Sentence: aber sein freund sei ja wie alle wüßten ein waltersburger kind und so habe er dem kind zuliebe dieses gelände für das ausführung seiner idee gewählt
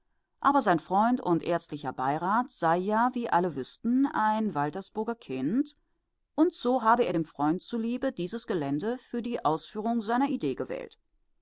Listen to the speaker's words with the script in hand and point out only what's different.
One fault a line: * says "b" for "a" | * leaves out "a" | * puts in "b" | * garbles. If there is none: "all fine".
* puts in "und ärztlicher beirat"
* says "freund" for "kind"
* says "die" for "das"